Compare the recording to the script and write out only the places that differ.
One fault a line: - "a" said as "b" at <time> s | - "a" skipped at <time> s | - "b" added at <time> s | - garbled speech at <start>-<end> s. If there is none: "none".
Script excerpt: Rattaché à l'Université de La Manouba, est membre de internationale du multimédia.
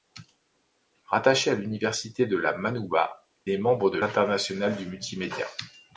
none